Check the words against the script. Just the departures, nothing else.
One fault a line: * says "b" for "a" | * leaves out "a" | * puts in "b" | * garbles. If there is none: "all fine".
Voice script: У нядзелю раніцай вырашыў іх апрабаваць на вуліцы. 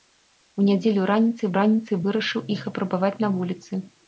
* puts in "раніцай"